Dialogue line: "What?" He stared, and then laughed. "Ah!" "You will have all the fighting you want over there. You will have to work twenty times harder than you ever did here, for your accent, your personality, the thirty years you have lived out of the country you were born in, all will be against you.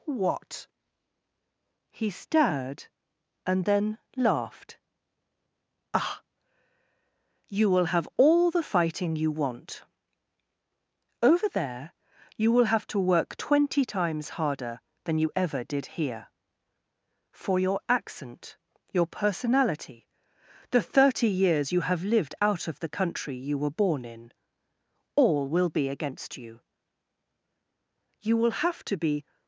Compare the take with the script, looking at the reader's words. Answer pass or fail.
fail